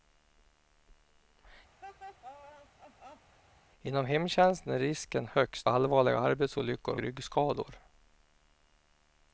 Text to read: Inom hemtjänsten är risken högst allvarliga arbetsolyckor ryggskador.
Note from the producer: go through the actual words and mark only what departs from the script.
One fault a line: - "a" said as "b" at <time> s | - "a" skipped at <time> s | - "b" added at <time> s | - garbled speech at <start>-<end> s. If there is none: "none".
none